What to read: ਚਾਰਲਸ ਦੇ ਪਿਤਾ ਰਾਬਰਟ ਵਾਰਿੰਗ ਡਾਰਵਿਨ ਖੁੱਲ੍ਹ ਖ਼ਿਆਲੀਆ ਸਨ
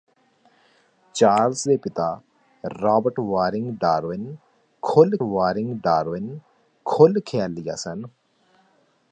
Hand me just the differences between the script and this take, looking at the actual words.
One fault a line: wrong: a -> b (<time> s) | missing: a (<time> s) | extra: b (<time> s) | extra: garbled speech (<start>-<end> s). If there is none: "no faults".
extra: ਵਾਰਿੰਗ ਡਾਰਵਿਨ ਖੁੱਲ੍ਹ (5.2 s)